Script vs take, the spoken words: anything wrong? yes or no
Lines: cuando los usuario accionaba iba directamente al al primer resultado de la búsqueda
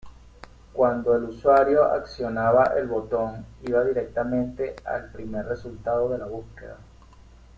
yes